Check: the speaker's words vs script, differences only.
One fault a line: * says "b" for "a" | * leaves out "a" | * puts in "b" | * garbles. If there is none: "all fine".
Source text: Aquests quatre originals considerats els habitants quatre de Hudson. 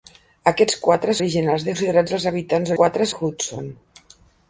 all fine